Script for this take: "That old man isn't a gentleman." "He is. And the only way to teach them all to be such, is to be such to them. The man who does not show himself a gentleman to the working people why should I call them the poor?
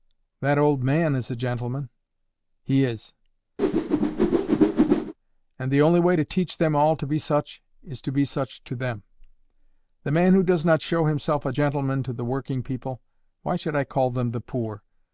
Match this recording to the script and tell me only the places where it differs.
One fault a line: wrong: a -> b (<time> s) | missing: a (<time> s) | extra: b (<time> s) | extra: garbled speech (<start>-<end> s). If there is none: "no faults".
wrong: isn't -> is (1.1 s)